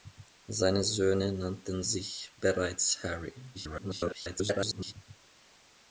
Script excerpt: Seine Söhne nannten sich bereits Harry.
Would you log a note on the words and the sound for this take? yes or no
yes